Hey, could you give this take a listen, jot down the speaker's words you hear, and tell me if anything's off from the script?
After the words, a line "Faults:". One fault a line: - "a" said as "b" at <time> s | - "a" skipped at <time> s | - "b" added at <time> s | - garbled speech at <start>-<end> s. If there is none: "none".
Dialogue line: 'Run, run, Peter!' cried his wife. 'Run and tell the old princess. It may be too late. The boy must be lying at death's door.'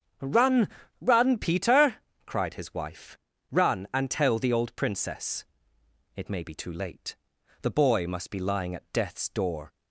'Run, run, Peter!' cried his wife. 'Run and tell the old princess. It may be too late. The boy must be lying at death's door.'
Faults:
none